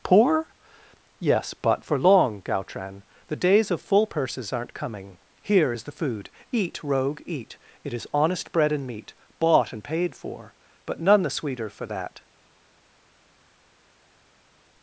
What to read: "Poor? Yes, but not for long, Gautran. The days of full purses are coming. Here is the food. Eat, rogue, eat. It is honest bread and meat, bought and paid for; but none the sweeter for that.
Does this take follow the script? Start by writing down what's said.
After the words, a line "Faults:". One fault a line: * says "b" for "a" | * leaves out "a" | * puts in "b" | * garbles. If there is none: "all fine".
"Poor? Yes, but for long, Gautran. The days of full purses aren't coming. Here is the food. Eat, rogue, eat. It is honest bread and meat, bought and paid for; but none the sweeter for that.
Faults:
* leaves out "not"
* says "aren't" for "are"